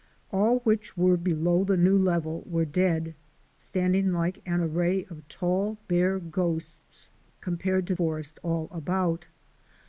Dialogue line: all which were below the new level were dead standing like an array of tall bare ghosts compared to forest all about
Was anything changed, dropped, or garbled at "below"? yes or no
no